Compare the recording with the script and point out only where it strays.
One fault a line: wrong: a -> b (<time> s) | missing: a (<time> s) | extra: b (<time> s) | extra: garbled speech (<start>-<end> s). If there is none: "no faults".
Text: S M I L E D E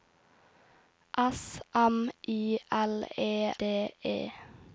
no faults